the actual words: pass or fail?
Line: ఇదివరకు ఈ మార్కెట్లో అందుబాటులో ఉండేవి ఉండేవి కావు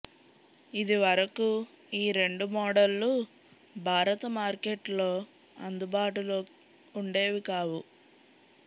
fail